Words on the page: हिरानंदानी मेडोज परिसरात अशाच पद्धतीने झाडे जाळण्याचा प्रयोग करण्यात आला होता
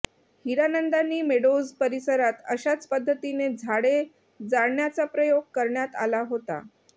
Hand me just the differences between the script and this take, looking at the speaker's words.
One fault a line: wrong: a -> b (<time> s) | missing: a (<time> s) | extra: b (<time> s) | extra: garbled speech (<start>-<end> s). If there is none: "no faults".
no faults